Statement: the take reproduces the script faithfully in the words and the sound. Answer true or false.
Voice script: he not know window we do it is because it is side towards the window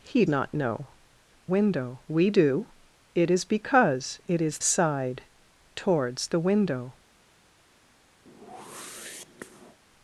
false